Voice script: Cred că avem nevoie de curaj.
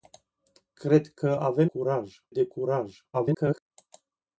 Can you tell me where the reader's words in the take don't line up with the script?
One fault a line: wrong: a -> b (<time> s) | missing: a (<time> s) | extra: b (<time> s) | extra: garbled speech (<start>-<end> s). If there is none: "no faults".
wrong: nevoie -> curaj (1.6 s)
extra: garbled speech (3.1-3.6 s)